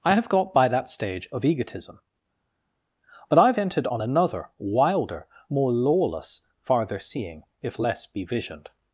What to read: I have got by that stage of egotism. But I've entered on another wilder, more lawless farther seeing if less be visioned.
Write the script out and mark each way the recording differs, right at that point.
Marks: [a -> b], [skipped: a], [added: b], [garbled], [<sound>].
I have got by that stage of egotism. But I've entered on another wilder, more lawless farther seeing if less be visioned.